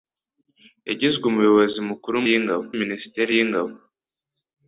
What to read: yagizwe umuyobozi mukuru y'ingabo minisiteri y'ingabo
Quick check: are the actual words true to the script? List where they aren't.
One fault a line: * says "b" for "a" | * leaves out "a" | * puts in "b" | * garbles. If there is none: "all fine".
all fine